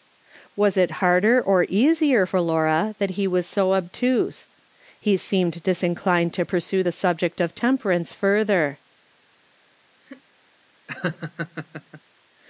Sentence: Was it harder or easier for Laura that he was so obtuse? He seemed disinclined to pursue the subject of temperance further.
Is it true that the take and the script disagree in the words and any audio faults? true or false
true